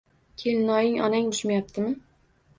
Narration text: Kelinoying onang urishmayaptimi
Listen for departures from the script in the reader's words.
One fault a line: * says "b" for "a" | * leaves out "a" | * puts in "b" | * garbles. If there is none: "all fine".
all fine